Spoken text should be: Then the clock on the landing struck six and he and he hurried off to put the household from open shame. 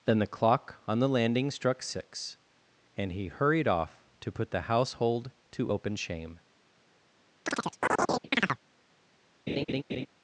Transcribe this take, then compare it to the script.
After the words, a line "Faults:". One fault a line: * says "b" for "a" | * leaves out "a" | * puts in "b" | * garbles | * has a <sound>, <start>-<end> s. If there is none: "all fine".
Then the clock on the landing struck six and he hurried off to put the household to open shame.
Faults:
* leaves out "and he"
* says "to" for "from"
* has a chirp, 7.5-8.6 s
* has a laugh, 9.5-10.1 s